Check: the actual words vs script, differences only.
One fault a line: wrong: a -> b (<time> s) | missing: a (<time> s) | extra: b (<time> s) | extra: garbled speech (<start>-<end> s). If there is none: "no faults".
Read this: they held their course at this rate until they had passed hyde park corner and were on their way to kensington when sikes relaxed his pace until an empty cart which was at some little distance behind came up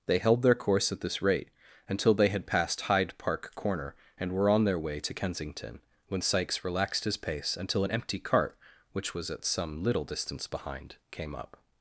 no faults